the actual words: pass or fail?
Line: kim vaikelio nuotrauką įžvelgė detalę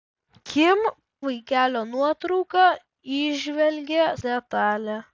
pass